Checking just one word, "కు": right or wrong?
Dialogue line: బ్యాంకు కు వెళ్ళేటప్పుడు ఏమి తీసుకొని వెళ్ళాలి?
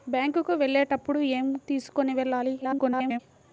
right